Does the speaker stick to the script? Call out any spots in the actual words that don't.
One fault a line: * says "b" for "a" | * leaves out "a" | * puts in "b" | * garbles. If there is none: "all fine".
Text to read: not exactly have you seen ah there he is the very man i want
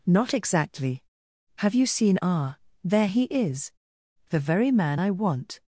all fine